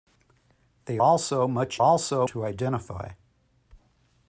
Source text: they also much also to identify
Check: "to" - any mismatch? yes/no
no